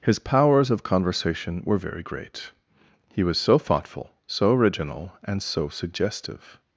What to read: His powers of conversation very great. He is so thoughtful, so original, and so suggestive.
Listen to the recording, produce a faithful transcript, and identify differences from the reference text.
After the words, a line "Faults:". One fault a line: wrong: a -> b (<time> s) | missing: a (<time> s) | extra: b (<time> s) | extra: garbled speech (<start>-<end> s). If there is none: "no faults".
His powers of conversation were very great. He was so thoughtful, so original, and so suggestive.
Faults:
extra: were (1.6 s)
wrong: is -> was (3.2 s)